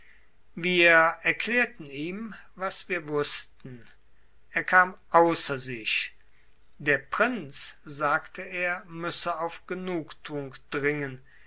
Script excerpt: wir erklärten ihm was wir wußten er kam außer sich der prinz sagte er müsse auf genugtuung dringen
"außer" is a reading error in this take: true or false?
false